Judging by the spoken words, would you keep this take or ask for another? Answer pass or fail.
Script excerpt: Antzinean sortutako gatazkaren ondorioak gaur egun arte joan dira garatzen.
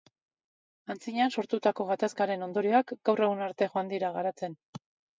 pass